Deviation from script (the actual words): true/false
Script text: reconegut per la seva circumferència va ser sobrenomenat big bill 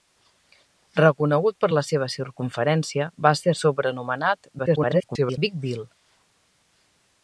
true